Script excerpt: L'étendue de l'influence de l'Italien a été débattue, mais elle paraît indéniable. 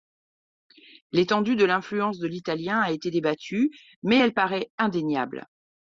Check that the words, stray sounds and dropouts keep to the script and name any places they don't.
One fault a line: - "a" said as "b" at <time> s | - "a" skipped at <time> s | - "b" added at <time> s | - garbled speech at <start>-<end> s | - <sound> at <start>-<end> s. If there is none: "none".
none